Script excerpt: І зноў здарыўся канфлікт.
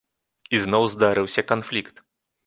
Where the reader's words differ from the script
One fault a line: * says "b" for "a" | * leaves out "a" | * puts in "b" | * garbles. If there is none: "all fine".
all fine